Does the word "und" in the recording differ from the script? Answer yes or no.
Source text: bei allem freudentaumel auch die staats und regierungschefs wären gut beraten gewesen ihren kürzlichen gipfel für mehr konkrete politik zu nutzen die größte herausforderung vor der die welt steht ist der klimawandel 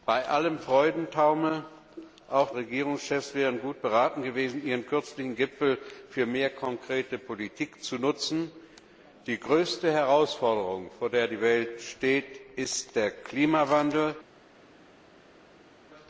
yes